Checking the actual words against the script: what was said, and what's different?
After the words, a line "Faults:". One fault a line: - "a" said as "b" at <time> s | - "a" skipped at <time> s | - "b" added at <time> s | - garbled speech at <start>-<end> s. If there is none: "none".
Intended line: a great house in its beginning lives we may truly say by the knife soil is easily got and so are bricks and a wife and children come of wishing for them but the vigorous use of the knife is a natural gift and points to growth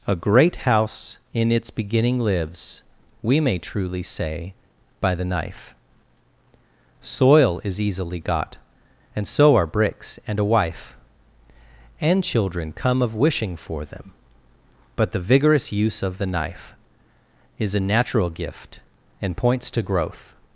a great house in its beginning lives we may truly say by the knife soil is easily got and so are bricks and a wife and children come of wishing for them but the vigorous use of the knife is a natural gift and points to growth
Faults:
none